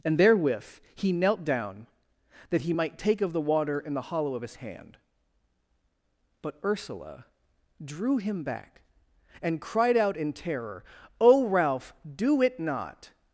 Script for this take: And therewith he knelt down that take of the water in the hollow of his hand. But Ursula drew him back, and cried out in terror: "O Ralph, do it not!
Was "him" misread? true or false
false